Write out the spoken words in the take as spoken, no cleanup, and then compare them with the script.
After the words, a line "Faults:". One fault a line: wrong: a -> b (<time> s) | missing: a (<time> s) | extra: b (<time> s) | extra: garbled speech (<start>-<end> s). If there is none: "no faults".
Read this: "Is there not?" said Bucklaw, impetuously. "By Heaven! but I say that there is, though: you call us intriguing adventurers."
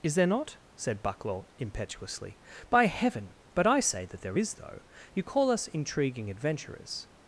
"Is there not?" said Bucklaw, impetuously. "By Heaven! but I say that there is, though: you call us intriguing adventurers."
Faults:
no faults